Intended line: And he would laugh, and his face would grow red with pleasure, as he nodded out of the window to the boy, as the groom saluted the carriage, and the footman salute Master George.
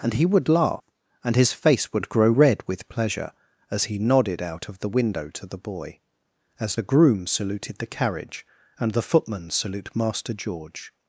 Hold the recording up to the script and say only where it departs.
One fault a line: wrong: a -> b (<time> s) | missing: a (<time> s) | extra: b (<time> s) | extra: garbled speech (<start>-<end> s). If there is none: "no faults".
no faults